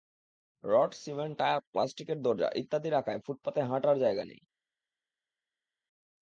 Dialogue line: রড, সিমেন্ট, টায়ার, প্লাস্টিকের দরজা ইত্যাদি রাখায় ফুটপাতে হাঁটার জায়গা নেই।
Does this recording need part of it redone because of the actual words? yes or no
no